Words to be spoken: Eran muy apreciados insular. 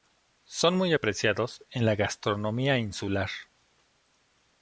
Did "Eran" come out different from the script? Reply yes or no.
yes